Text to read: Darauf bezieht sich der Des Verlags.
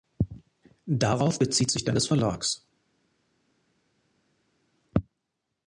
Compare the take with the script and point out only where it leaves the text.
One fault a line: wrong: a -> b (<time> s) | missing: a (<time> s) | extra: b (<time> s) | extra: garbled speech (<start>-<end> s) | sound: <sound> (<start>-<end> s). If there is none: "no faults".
no faults